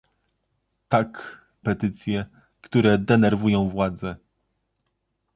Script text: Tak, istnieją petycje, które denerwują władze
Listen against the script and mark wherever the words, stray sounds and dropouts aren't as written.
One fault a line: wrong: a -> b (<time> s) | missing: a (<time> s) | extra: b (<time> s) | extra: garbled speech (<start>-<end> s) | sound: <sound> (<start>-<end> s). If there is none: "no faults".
missing: istnieją (1.4 s)